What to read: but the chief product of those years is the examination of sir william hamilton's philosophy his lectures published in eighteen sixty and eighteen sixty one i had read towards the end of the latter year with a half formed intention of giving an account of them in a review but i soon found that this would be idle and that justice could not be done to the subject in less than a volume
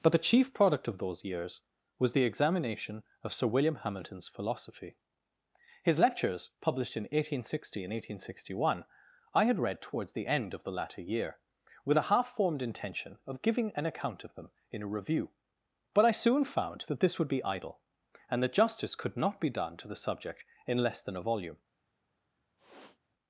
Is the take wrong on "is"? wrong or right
wrong